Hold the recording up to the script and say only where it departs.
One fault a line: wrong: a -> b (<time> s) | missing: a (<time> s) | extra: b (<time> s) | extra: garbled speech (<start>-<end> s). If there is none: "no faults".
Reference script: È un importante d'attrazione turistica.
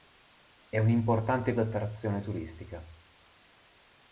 no faults